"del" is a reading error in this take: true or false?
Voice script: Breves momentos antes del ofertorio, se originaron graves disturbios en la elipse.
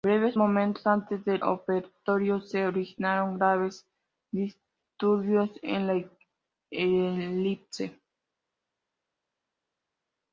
false